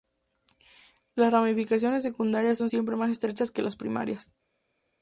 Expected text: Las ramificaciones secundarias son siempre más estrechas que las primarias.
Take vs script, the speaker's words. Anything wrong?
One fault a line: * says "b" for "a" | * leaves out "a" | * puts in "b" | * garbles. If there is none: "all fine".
all fine